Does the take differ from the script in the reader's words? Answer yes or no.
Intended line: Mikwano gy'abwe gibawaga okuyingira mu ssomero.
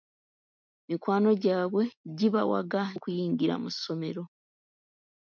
no